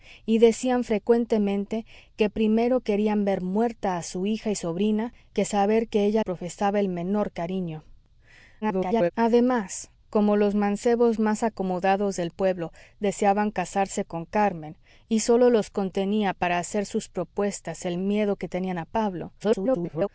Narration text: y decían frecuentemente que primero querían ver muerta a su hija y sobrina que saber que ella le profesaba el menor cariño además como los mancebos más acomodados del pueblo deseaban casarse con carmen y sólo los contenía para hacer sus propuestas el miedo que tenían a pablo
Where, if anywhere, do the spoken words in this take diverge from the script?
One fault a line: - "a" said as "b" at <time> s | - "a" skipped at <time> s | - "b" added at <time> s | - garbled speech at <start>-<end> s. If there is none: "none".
- "le" skipped at 6.2 s
- garbled speech at 8.6-9.1 s
- garbled speech at 19.4-20.1 s